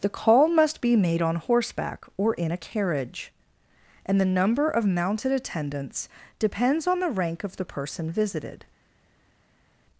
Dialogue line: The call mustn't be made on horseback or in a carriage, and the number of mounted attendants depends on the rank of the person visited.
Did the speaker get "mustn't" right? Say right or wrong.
wrong